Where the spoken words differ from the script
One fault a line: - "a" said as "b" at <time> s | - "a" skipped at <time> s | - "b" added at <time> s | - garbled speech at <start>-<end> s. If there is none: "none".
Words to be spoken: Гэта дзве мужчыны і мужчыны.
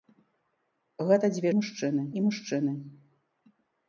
none